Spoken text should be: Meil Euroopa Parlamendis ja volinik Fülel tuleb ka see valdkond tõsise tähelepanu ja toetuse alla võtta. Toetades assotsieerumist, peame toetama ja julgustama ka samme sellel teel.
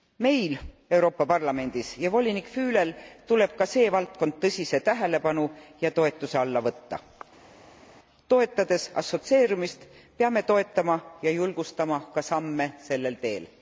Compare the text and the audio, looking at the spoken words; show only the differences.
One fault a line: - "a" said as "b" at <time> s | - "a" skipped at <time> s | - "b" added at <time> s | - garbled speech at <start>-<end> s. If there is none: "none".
none